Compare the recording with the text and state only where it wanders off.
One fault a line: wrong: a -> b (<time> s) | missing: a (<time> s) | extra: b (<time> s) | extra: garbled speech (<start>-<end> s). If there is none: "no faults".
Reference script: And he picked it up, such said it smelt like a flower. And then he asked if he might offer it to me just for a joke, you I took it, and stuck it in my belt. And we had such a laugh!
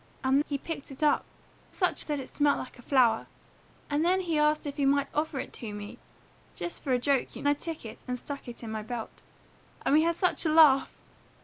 no faults